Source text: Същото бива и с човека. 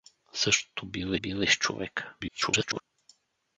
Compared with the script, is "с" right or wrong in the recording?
right